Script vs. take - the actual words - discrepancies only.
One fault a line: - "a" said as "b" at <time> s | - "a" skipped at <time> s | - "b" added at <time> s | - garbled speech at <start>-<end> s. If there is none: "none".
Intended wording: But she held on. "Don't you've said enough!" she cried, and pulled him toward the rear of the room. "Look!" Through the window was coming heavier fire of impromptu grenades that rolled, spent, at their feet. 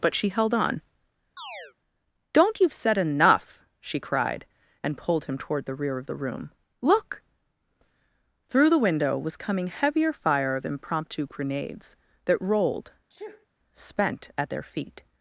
none